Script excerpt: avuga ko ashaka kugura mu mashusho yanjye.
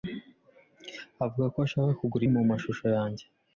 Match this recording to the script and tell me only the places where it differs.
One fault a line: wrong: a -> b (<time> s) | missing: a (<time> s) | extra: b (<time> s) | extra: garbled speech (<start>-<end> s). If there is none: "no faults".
no faults